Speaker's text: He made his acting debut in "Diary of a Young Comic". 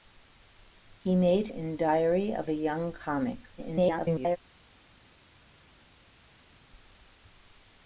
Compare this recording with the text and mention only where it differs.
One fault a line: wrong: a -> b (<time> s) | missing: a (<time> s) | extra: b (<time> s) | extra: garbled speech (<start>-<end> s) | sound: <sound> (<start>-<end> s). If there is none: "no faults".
missing: his acting debut (1.5 s)
extra: garbled speech (3.6-4.4 s)